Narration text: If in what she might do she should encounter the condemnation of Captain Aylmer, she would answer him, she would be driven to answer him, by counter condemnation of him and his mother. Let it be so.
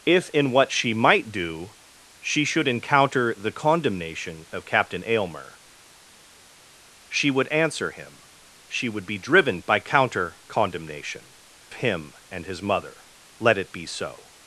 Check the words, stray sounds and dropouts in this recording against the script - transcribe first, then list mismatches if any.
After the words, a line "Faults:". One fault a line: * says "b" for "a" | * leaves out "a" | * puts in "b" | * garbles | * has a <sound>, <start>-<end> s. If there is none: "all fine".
If in what she might do she should encounter the condemnation of Captain Aylmer, she would answer him, she would be driven by counter condemnation him and his mother. Let it be so.
Faults:
* leaves out "to answer him"
* leaves out "of"